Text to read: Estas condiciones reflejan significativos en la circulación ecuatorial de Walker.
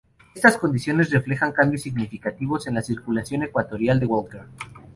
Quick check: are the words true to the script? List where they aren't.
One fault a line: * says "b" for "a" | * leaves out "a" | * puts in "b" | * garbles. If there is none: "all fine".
* puts in "cambios"